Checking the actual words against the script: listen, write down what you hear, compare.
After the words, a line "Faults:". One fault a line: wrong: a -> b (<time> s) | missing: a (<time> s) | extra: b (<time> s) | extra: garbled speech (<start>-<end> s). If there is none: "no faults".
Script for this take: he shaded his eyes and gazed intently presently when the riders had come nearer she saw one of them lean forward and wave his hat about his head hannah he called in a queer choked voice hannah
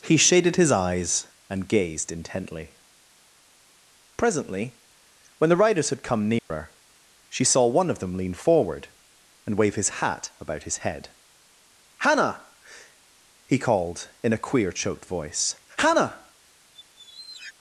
he shaded his eyes and gazed intently presently when the riders had come nearer she saw one of them lean forward and wave his hat about his head hannah he called in a queer choked voice hannah
Faults:
no faults